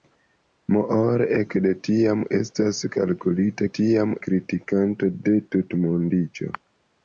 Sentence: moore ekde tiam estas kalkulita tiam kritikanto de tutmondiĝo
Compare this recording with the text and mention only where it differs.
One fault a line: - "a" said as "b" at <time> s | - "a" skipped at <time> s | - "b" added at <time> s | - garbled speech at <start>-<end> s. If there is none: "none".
none